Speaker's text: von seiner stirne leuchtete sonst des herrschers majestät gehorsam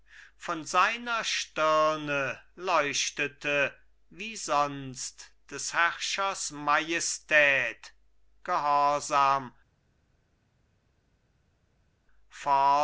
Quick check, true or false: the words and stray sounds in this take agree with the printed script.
false